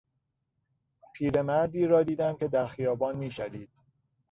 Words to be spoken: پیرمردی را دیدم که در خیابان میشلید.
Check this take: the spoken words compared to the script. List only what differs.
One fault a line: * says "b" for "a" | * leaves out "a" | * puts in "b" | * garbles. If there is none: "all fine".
all fine